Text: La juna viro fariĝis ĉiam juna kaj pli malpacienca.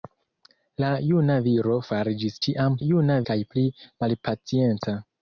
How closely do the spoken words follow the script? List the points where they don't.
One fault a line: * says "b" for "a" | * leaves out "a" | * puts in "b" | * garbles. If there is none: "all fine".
all fine